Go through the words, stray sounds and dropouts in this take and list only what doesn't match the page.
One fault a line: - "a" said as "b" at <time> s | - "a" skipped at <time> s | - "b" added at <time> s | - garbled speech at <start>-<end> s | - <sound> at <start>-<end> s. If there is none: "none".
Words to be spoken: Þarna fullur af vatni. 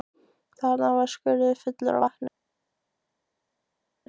- "var skurður" added at 0.9 s